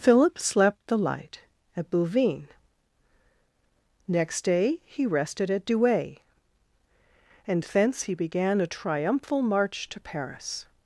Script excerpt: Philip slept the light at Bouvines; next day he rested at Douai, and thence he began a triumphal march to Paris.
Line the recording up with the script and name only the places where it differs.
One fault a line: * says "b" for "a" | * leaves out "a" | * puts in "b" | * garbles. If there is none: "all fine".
all fine